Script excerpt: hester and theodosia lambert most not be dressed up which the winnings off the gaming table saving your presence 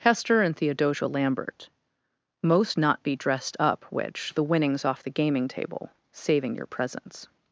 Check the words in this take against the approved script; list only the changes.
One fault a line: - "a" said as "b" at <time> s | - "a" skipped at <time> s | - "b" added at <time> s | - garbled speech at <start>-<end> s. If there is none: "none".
none